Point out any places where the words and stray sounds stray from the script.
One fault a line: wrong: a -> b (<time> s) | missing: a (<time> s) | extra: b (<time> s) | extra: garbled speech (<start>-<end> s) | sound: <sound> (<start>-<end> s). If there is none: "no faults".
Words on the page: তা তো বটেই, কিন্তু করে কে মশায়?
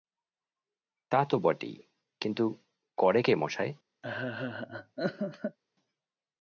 sound: laugh (4.0-5.6 s)